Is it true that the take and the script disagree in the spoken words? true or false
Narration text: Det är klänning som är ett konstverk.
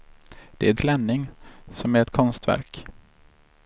false